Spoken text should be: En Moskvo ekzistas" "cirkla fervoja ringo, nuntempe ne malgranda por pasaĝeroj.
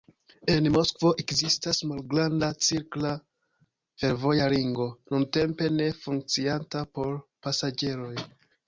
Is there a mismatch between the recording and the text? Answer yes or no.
yes